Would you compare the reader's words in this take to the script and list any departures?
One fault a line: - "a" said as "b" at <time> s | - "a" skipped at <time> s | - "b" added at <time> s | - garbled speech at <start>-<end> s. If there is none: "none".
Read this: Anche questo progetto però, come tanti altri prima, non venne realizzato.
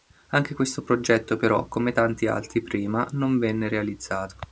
none